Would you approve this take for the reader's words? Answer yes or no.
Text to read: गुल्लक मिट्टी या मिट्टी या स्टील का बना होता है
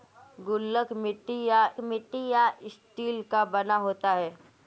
yes